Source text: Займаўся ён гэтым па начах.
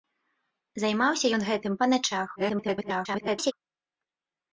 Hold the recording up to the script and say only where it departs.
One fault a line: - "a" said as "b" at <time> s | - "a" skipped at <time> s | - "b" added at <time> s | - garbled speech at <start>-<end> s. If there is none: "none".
- garbled speech at 2.4-3.5 s